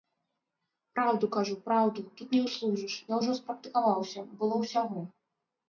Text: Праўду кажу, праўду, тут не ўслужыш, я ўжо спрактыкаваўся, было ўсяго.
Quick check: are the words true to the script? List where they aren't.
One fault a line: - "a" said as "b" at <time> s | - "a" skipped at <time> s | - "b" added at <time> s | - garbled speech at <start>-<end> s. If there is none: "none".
none